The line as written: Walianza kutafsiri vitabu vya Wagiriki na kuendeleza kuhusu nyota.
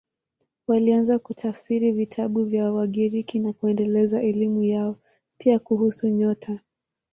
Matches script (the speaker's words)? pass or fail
fail